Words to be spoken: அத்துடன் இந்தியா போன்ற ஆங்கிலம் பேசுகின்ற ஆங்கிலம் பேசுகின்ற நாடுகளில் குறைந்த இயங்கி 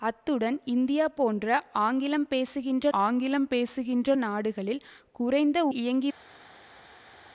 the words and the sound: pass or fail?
pass